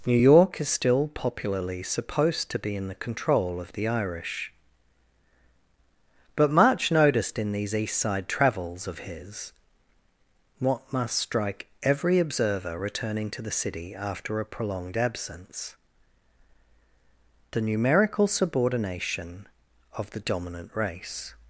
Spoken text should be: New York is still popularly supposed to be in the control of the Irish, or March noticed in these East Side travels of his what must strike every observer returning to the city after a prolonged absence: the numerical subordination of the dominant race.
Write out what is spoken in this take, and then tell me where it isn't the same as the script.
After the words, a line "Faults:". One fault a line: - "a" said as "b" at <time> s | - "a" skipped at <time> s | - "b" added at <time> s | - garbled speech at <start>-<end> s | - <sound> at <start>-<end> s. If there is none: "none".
New York is still popularly supposed to be in the control of the Irish, but March noticed in these East Side travels of his what must strike every observer returning to the city after a prolonged absence: the numerical subordination of the dominant race.
Faults:
- "or" said as "but" at 6.4 s